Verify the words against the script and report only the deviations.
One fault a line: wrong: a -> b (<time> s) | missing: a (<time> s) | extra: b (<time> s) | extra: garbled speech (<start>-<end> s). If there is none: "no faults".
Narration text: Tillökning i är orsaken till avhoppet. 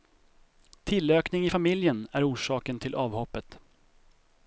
extra: familjen (1.5 s)